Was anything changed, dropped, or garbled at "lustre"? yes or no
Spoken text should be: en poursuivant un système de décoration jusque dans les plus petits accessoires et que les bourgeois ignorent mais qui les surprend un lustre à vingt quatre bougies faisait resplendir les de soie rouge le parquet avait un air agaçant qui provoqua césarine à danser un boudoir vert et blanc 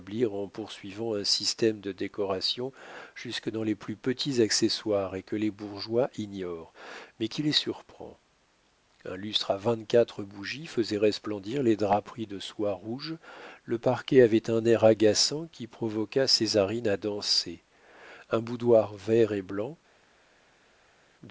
no